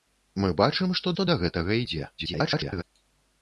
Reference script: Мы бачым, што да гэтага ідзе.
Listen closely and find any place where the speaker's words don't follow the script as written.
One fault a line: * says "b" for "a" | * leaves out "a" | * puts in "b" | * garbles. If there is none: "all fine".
* puts in "што"
* garbles